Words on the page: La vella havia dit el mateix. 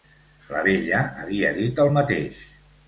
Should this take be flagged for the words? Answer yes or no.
no